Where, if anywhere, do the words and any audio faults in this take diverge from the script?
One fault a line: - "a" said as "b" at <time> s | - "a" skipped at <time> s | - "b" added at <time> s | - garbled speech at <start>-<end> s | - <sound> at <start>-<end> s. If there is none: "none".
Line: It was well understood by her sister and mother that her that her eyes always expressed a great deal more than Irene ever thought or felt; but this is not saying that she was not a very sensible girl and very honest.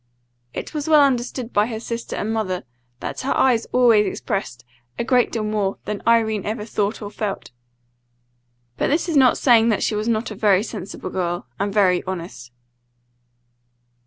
- "that her" skipped at 3.4 s